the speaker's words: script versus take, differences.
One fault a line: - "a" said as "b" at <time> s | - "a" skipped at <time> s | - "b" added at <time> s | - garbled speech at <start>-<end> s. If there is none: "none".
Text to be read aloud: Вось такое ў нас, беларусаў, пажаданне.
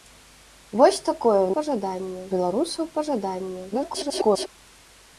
- "нас" said as "пажаданне" at 1.6 s
- garbled speech at 3.7-4.5 s